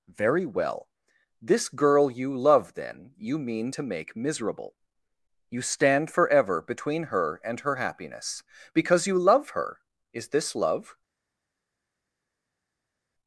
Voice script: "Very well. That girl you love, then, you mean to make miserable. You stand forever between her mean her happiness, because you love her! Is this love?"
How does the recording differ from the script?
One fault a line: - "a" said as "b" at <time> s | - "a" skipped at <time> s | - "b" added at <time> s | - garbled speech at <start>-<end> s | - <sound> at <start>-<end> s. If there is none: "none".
- "That" said as "This" at 1.4 s
- "mean" said as "and" at 7.4 s